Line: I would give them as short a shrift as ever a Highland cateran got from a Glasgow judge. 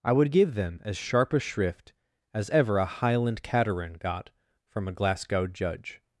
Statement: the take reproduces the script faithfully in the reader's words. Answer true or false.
false